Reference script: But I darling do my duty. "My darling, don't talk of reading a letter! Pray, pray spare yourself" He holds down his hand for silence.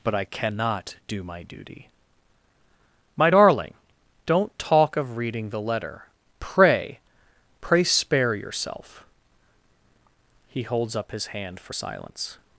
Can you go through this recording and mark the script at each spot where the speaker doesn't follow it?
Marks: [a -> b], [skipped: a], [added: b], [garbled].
But I [darling -> cannot] do my duty. "My darling, don't talk of reading [a -> the] letter! Pray, pray spare yourself" He holds [down -> up] his hand for silence.